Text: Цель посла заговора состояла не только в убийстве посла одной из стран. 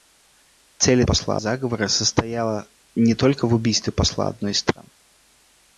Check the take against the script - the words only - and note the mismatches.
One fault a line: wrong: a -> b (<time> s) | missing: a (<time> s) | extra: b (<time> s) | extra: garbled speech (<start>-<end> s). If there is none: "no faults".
no faults